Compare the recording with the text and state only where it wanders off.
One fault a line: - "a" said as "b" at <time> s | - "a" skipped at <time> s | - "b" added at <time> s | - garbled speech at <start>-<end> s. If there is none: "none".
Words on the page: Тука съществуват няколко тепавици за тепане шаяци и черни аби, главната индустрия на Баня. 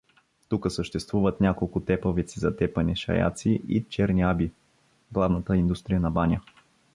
none